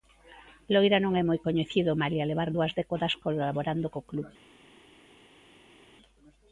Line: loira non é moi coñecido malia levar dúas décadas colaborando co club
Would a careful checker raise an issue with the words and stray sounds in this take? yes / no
no